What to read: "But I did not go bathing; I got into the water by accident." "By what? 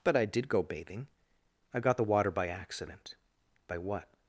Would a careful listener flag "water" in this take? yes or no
no